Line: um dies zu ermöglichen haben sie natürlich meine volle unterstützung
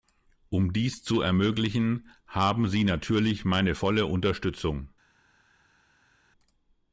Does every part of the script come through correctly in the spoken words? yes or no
yes